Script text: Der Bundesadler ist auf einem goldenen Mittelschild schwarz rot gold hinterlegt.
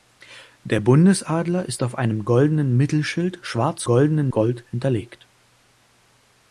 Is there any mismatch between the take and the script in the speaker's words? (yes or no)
yes